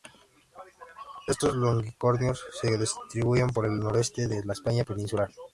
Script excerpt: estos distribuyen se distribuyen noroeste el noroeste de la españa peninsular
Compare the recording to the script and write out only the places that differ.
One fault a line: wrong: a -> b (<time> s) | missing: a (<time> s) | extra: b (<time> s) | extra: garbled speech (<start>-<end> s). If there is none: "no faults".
wrong: distribuyen -> longicornios (1.6 s)
wrong: noroeste -> por (3.5 s)